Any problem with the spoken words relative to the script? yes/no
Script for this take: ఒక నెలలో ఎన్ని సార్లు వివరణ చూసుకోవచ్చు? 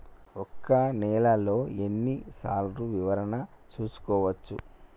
no